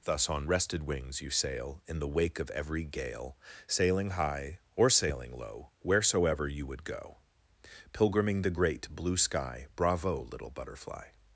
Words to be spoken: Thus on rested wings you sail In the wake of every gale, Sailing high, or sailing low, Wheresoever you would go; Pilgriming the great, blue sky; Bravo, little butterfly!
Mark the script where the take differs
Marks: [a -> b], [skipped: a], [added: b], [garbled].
Thus on rested wings you sail In the wake of every gale, Sailing high, or sailing low, Wheresoever you would go; Pilgriming the great, blue sky; Bravo, little butterfly!